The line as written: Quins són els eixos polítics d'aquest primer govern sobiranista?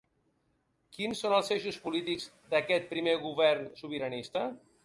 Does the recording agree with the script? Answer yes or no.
yes